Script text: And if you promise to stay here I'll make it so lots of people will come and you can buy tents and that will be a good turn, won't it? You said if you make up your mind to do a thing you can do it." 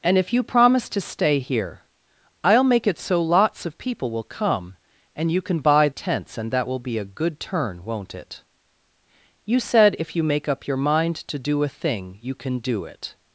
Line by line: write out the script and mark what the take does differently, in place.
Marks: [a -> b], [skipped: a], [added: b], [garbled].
And if you promise to stay here I'll make it so lots of people will come and you can buy tents and that will be a good turn, won't it? You said if you make up your mind to do a thing you can do it."